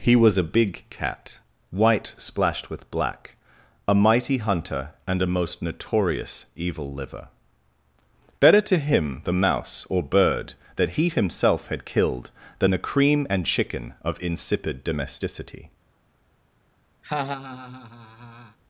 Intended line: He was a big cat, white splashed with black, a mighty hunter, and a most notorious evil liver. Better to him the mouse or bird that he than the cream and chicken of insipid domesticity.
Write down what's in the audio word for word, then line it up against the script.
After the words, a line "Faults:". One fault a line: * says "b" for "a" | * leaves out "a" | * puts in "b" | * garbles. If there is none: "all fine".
He was a big cat, white splashed with black, a mighty hunter, and a most notorious evil liver. Better to him the mouse or bird that he himself had killed than the cream and chicken of insipid domesticity.
Faults:
* puts in "himself had killed"